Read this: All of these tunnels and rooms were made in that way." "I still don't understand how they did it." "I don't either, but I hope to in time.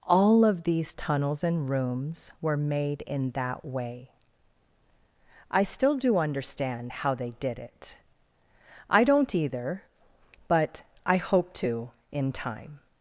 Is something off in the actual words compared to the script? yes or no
yes